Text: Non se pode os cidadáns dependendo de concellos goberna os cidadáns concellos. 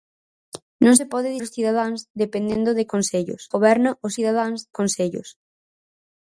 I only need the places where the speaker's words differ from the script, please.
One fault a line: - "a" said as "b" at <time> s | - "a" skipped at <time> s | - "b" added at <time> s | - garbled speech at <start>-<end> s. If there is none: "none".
none